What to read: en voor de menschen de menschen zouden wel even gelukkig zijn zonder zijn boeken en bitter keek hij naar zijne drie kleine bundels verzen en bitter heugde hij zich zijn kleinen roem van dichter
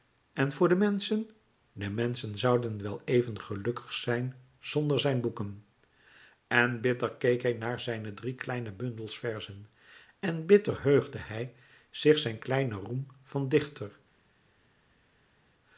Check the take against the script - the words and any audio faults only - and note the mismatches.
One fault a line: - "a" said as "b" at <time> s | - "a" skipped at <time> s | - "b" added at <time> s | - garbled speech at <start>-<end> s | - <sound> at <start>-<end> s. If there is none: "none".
none